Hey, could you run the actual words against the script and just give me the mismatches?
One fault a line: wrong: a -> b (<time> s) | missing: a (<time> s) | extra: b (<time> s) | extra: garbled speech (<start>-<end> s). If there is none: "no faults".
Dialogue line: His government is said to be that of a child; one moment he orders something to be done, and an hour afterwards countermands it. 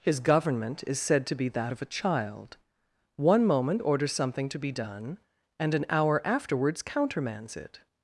missing: he (3.8 s)